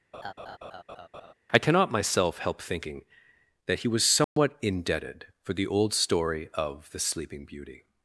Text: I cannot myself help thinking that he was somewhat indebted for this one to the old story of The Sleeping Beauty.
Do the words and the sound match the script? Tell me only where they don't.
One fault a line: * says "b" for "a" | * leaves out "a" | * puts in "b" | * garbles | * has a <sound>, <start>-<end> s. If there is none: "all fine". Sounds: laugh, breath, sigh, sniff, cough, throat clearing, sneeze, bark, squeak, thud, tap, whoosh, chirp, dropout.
* has a laugh, 0.1-1.3 s
* has a dropout, 4.2-4.4 s
* leaves out "this one to"